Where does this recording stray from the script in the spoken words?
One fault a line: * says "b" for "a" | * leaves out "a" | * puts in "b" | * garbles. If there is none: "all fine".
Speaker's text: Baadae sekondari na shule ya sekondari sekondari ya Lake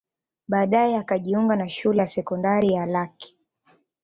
* says "akajiunga" for "sekondari"
* leaves out "sekondari"